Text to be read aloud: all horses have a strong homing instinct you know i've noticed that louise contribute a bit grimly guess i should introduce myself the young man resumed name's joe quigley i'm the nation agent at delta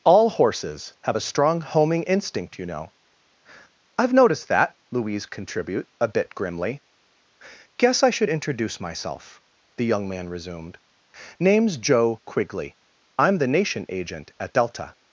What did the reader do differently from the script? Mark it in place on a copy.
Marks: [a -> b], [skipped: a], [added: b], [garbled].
all horses have a strong homing instinct you know i've noticed that louise contribute a bit grimly guess i should introduce myself the young man resumed name's joe quigley i'm the nation agent at delta